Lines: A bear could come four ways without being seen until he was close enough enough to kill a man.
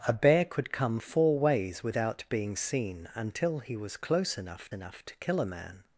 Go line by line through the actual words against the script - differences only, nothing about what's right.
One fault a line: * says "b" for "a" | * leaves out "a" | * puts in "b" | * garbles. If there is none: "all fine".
all fine